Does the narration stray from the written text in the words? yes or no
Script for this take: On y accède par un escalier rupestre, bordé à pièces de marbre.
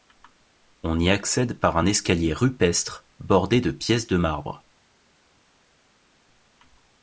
yes